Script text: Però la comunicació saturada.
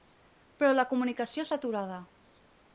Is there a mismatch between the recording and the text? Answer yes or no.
no